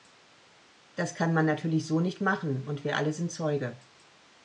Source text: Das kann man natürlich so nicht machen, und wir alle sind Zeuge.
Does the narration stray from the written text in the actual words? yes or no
no